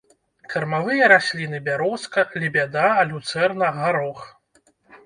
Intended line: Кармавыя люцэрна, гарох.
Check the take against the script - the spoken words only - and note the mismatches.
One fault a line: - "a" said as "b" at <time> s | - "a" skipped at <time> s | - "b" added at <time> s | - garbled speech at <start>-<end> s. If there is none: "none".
- "расліны бярозка лебяда" added at 1.1 s